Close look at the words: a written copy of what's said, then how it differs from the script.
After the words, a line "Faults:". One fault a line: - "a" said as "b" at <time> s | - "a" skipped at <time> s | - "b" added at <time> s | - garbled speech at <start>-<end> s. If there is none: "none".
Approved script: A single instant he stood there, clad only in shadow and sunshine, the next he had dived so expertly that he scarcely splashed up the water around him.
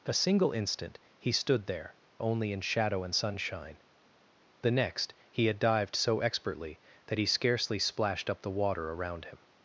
A single instant he stood there, only in shadow and sunshine, the next he had dived so expertly that he scarcely splashed up the water around him.
Faults:
- "clad" skipped at 1.9 s